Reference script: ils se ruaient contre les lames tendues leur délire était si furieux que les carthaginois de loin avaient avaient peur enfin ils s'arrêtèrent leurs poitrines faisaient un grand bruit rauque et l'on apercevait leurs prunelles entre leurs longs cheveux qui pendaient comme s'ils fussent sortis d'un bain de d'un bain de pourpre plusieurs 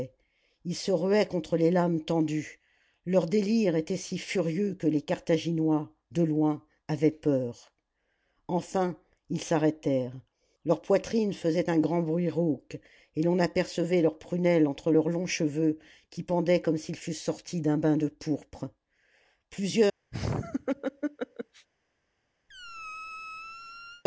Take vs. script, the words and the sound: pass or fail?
fail